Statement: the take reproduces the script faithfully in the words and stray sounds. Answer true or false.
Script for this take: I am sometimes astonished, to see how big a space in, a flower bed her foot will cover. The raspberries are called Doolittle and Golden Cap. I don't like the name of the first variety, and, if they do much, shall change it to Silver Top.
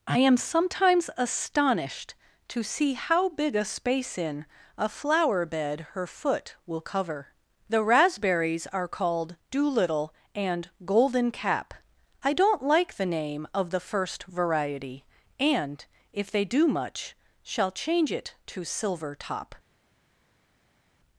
true